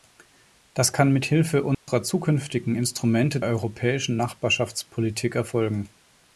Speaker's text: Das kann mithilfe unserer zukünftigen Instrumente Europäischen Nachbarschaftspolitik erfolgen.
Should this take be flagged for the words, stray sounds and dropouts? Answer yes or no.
yes